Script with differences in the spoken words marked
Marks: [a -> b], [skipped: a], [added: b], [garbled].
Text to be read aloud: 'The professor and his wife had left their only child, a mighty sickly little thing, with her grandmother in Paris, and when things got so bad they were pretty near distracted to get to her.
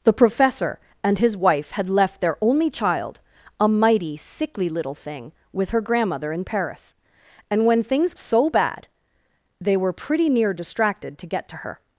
'The professor and his wife had left their only child, a mighty sickly little thing, with her grandmother in Paris, and when things [skipped: got] so bad they were pretty near distracted to get to her.